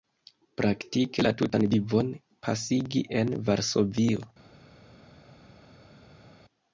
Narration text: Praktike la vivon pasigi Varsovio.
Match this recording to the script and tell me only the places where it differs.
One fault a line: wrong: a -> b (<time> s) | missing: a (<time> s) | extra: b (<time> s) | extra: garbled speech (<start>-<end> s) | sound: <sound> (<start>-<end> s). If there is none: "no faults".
extra: tutan (1.4 s)
extra: en (3.2 s)